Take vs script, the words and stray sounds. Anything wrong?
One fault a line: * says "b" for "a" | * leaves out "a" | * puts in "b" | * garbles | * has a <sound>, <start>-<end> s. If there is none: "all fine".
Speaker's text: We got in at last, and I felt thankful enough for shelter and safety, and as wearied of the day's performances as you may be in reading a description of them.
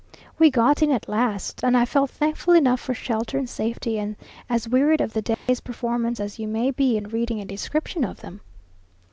* has a dropout, 5.3-5.5 s